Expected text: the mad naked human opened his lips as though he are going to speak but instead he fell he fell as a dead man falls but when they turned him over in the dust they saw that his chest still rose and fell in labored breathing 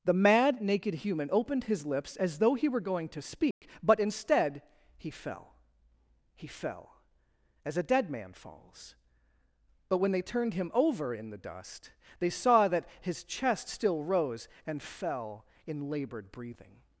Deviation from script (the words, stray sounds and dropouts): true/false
true